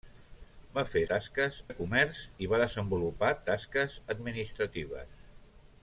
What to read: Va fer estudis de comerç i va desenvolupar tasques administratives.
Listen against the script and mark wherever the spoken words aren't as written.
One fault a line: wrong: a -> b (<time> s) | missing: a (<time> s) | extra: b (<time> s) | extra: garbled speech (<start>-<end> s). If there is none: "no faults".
wrong: estudis -> tasques (1.1 s)